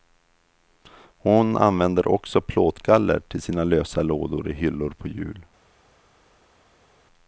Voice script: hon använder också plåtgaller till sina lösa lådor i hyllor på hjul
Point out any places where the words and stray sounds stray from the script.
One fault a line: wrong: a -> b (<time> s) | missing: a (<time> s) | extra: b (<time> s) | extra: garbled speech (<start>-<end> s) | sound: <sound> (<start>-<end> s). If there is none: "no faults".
no faults